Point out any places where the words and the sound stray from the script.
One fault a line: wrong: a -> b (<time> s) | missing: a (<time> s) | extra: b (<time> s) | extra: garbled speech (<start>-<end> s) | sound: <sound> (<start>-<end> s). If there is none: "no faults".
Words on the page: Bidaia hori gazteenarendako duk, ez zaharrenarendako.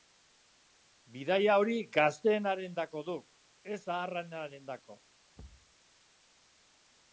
sound: thud (5.4-5.7 s)